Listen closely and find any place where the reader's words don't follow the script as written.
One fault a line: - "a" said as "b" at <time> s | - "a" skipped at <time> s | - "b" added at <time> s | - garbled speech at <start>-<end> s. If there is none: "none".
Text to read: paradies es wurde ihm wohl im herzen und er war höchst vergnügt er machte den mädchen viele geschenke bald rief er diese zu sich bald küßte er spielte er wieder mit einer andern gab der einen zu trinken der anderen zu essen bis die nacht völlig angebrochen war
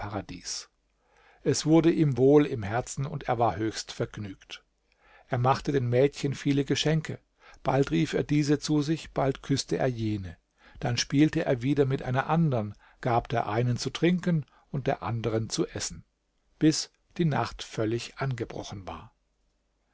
- "jene dann" added at 9.9 s
- "und" added at 14.7 s